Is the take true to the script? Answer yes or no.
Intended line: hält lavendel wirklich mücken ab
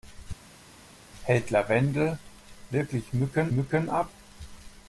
no